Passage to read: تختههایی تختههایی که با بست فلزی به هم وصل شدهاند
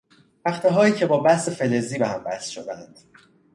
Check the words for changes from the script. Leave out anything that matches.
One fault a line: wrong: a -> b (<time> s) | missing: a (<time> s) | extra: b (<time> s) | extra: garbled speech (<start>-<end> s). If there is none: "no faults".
missing: تختههایی (0.9 s)